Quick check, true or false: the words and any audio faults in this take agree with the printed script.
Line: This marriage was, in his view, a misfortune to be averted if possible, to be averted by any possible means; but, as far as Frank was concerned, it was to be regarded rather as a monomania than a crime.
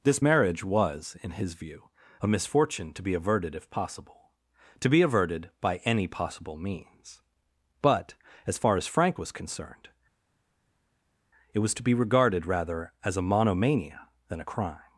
true